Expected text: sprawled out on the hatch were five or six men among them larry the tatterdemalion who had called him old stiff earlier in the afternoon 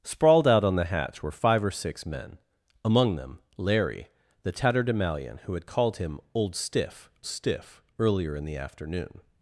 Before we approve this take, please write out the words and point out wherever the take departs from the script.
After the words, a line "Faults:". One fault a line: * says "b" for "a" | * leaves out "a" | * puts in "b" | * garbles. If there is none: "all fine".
sprawled out on the hatch were five or six men among them larry the tatterdemalion who had called him old stiff stiff earlier in the afternoon
Faults:
* puts in "stiff"